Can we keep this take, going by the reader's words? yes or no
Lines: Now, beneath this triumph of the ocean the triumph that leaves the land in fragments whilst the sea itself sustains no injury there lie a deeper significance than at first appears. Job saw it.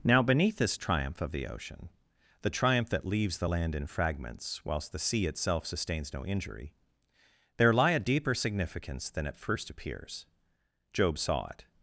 yes